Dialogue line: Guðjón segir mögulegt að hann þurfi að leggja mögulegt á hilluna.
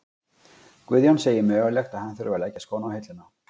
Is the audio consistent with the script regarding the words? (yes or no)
no